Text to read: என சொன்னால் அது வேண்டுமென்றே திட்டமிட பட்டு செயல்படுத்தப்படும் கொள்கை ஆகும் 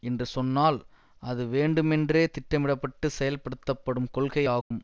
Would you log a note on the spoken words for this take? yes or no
yes